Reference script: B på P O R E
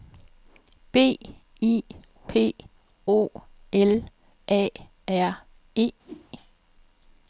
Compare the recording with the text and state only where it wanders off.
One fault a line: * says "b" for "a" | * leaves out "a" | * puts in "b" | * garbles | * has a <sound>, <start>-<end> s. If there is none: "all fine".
* says "I" for "på"
* puts in "L A"
* has a whoosh, 6.0-6.3 s